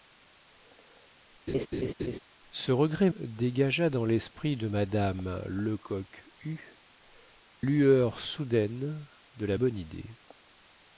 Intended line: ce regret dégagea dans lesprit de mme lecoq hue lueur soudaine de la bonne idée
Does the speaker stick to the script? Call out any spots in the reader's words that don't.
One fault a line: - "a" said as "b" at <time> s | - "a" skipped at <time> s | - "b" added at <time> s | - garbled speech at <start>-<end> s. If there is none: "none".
none